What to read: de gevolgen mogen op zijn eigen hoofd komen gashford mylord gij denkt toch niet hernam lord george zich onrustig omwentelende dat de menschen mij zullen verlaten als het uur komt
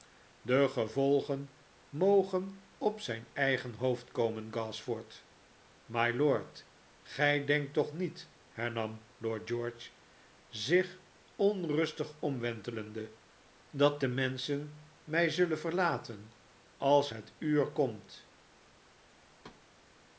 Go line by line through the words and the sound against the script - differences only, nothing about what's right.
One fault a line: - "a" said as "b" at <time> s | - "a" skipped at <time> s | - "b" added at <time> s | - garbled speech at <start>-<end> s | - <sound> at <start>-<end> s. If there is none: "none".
- thud at 19.4-19.6 s